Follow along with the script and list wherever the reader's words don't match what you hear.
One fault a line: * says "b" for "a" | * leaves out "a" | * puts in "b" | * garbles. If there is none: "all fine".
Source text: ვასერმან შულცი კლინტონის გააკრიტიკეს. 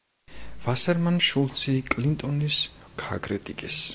all fine